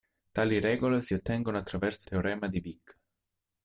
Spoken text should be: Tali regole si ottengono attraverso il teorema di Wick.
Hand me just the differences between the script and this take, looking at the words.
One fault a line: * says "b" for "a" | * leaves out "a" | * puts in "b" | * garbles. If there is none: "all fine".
* leaves out "il"